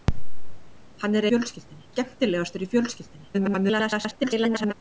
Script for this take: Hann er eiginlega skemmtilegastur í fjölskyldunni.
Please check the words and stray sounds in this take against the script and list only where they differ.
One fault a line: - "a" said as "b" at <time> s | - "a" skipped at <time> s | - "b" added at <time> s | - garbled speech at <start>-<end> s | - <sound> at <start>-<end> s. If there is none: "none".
- "eiginlega" said as "fjölskyldunni" at 1.3 s
- garbled speech at 3.3-4.7 s